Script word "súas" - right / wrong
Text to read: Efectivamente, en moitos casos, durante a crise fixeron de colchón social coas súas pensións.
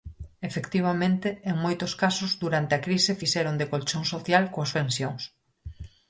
wrong